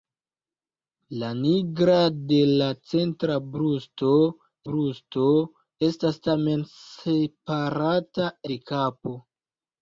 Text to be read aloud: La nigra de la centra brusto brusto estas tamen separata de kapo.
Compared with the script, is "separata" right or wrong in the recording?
right